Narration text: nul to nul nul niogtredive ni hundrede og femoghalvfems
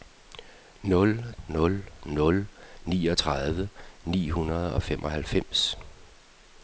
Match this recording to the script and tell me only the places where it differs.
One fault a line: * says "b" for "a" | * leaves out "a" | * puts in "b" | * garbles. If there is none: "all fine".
* leaves out "to"